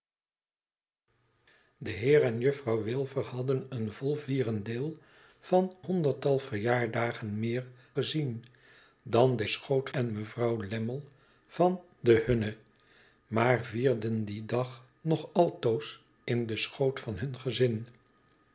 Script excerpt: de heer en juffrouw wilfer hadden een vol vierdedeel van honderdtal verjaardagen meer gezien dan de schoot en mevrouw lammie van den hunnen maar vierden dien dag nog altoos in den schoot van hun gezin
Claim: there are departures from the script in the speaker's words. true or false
false